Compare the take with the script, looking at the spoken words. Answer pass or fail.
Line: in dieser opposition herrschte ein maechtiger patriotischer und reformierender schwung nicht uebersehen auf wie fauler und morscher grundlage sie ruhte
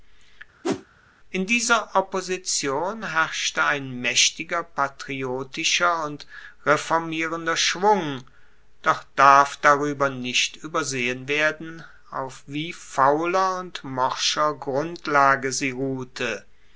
fail